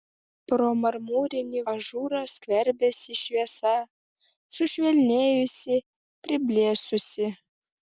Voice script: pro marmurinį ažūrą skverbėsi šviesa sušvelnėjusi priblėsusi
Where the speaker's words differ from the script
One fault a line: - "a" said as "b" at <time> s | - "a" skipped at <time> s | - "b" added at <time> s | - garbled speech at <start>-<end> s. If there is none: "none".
none